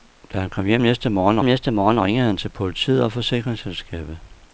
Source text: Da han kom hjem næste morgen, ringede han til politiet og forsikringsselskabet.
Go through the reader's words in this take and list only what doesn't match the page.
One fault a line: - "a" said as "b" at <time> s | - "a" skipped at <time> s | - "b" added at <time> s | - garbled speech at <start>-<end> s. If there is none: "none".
- "næste morgen" added at 1.4 s